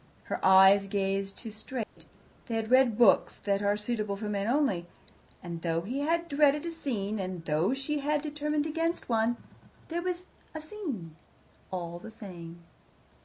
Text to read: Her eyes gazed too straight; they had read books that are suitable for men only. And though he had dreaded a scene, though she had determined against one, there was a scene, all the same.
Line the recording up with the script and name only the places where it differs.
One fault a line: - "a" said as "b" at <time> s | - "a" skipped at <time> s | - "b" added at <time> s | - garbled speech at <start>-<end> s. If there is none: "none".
- "and" added at 7.2 s